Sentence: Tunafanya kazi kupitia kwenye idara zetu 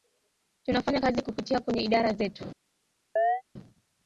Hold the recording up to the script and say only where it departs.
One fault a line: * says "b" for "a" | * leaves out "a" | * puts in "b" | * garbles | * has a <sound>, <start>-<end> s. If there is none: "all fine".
* has a chirp, 3.2-3.4 s